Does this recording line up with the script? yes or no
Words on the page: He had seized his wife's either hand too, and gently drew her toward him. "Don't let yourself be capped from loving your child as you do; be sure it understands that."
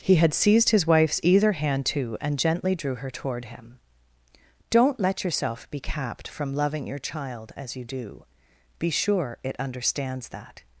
yes